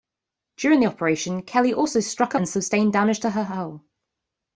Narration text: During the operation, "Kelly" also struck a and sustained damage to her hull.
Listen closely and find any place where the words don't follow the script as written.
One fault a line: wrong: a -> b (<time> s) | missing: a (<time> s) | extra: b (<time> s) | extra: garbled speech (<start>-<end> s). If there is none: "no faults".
no faults